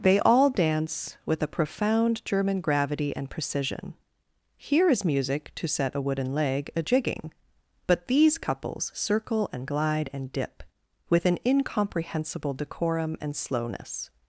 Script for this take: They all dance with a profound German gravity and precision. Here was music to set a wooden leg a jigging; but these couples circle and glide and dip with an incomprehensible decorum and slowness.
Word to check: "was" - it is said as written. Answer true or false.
false